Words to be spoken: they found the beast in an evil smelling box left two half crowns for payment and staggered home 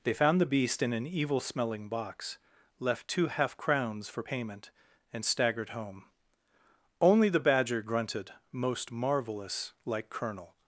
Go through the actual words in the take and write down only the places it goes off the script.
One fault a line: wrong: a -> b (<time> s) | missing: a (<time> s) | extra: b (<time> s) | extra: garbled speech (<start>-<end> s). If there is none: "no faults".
extra: only the badger grunted most marvelous like colonel (7.0 s)